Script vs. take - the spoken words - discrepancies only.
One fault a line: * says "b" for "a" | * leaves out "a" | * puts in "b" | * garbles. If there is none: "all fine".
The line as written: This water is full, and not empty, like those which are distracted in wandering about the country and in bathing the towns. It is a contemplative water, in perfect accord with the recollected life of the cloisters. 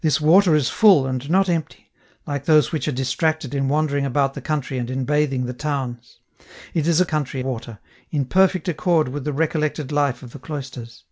* says "country" for "contemplative"